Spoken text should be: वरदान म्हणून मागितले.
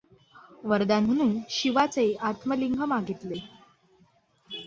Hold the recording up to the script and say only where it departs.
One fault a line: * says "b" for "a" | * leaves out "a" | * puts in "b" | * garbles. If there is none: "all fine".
* puts in "शिवाचे आत्मलिंग"